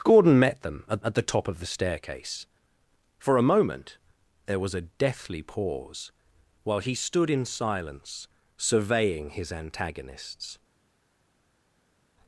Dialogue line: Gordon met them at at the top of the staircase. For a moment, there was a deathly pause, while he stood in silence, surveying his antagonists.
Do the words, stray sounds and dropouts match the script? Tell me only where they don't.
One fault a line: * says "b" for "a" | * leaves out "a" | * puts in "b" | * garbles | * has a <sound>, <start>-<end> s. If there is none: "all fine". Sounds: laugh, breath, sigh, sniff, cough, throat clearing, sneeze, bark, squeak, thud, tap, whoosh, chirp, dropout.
all fine